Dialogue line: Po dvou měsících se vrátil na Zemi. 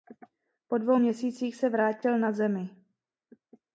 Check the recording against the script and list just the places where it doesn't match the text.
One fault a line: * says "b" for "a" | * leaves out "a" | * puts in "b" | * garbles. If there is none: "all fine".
all fine